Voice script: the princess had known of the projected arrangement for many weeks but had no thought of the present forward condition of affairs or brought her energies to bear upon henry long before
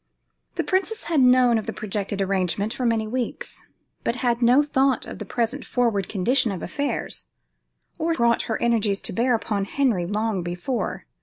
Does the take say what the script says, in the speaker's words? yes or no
yes